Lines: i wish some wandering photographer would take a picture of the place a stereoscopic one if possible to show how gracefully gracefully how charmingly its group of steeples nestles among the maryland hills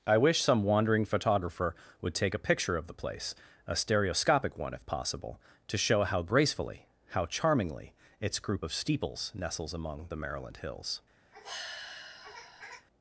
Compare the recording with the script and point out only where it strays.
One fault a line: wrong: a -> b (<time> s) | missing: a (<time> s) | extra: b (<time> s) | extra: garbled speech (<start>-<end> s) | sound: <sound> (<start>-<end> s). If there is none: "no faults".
missing: gracefully (6.9 s)
sound: sigh (11.3-12.9 s)